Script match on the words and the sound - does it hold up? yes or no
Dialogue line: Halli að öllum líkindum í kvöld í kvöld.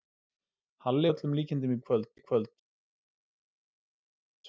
yes